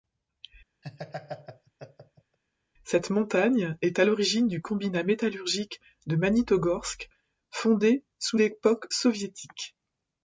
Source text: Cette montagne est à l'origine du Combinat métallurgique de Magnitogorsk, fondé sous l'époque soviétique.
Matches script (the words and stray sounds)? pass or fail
fail